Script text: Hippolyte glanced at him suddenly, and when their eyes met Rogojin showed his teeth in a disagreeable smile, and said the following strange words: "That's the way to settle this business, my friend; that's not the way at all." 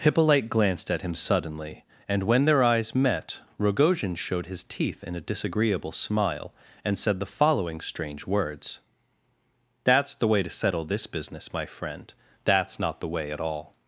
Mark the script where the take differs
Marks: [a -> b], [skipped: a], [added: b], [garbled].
Hippolyte glanced at him suddenly, and when their eyes met Rogojin showed his teeth in a disagreeable smile, and said the following strange words: "That's the way to settle this business, my friend; that's not the way at all."